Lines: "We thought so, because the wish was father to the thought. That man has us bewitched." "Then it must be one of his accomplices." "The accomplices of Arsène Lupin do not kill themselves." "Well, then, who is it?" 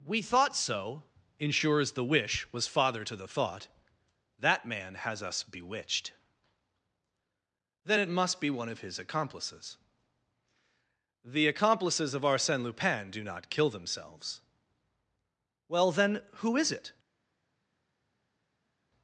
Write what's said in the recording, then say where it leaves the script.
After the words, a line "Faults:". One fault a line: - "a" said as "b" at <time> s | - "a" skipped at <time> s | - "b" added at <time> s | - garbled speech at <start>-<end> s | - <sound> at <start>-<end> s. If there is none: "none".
"We thought so, ensures the wish was father to the thought. That man has us bewitched." "Then it must be one of his accomplices." "The accomplices of Arsène Lupin do not kill themselves." "Well, then, who is it?"
Faults:
- "because" said as "ensures" at 1.4 s